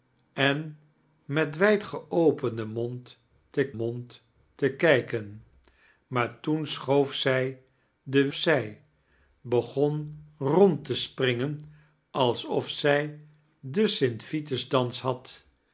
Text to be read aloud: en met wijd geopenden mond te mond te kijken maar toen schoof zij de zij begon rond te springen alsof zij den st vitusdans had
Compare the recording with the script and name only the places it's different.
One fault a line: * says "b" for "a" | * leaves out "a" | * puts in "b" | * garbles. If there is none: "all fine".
all fine